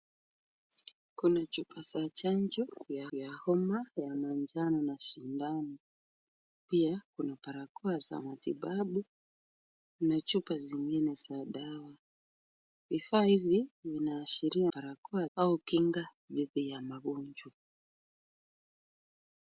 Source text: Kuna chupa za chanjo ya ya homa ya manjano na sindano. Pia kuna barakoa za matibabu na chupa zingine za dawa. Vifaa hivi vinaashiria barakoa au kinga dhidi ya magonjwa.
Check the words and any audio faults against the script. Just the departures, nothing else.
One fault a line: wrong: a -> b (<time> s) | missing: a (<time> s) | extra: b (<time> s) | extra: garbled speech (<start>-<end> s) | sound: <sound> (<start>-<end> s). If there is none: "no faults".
no faults